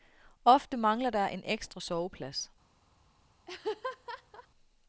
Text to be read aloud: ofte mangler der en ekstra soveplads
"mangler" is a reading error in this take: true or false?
false